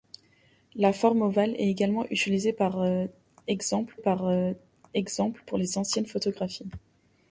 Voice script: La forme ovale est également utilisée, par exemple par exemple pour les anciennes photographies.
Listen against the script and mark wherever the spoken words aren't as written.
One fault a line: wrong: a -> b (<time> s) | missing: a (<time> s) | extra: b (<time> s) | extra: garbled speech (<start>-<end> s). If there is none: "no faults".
no faults